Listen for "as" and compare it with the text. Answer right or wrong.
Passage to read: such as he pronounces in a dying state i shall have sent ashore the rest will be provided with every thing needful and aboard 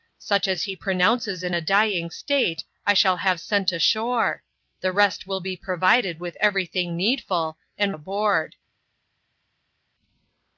right